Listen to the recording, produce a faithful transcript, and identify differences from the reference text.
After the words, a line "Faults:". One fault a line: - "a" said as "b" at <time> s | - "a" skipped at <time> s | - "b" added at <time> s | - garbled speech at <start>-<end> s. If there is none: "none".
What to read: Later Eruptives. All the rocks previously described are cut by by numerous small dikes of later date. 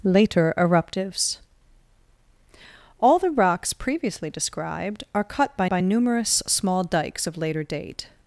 Later Eruptives. All the rocks previously described are cut by by numerous small dikes of later date.
Faults:
none